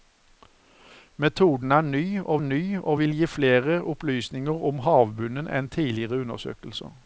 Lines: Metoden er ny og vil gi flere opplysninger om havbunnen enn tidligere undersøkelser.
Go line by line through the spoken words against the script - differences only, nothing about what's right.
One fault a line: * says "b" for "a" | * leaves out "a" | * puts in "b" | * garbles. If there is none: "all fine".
* puts in "ny og"